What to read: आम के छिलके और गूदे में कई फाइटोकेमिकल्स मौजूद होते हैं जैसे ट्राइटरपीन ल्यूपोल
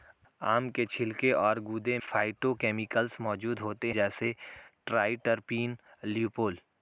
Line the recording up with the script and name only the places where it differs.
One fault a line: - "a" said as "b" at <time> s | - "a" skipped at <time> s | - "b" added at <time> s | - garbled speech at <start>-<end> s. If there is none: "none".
- "में कई" skipped at 2.0 s
- "हैं" skipped at 3.9 s